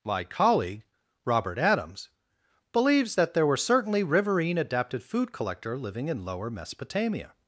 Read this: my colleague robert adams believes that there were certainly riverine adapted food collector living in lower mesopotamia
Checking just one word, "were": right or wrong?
right